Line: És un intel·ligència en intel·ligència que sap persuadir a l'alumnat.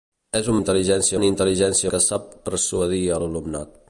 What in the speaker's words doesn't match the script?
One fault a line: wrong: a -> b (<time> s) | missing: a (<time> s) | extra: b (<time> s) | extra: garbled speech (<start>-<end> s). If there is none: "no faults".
no faults